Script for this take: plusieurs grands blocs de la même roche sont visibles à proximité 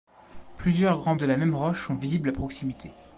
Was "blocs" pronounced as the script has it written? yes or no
no